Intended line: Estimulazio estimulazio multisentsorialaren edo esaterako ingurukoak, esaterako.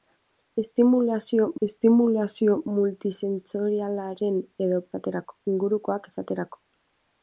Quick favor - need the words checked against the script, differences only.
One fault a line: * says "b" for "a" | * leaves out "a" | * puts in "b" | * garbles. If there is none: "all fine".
all fine